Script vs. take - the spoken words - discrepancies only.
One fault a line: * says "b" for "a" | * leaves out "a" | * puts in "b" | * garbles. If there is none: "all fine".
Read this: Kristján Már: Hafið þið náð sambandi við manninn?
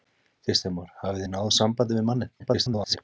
* garbles